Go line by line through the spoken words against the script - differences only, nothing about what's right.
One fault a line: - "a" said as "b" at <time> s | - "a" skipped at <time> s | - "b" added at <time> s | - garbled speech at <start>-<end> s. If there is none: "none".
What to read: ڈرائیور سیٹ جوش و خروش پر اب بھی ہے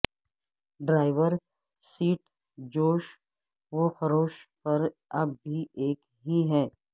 - "ایک ہی" added at 5.8 s